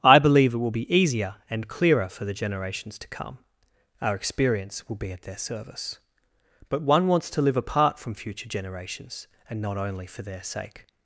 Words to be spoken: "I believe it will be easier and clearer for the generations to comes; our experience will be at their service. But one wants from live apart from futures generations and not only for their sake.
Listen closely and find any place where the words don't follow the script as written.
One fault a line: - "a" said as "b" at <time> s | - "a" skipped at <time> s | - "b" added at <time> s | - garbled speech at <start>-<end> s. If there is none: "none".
- "comes" said as "come" at 3.1 s
- "from" said as "to" at 7.3 s
- "futures" said as "future" at 8.2 s